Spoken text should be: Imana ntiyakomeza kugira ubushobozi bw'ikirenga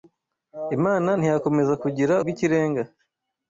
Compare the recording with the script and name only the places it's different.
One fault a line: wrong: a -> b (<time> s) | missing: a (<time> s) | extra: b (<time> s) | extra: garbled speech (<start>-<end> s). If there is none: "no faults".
missing: ubushobozi (2.1 s)